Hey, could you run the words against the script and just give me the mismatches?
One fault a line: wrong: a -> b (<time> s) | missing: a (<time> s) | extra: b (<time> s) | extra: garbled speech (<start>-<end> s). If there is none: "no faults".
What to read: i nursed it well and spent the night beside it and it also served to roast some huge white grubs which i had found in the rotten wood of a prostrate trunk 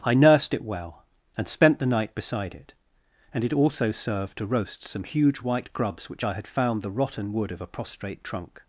missing: in (6.8 s)